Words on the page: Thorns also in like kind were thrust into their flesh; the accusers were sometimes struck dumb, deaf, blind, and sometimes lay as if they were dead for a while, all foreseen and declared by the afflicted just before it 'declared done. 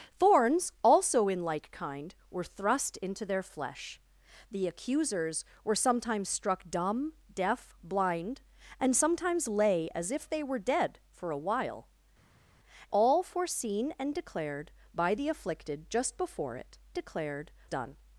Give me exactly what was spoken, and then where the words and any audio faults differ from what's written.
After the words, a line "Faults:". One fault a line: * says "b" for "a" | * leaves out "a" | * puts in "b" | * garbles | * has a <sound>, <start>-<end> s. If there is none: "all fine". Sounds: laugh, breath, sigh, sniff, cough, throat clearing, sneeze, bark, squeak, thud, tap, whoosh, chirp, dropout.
Thorns also in like kind were thrust into their flesh; the accusers were sometimes struck dumb, deaf, blind, and sometimes lay as if they were dead for a while, all foreseen and declared by the afflicted just before it 'declared done.
Faults:
all fine